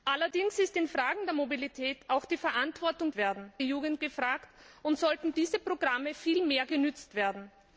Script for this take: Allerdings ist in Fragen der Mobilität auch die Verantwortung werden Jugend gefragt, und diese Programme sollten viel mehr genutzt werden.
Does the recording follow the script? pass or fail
pass